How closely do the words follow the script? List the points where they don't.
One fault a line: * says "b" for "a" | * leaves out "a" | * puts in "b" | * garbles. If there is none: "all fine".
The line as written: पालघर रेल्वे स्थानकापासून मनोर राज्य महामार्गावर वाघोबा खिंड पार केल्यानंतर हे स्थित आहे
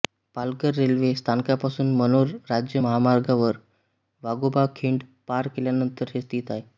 all fine